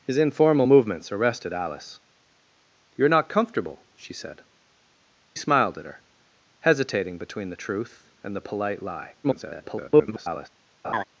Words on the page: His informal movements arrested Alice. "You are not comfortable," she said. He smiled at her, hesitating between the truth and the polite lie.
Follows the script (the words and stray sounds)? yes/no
no